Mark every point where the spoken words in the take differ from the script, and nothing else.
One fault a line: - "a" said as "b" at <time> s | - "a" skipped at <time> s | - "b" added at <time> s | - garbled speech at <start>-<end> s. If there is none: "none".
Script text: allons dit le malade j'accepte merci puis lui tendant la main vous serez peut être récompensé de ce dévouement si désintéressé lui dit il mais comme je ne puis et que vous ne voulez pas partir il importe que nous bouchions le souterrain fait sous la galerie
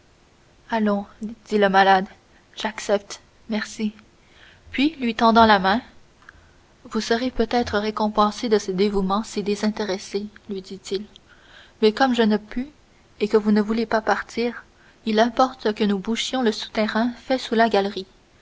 none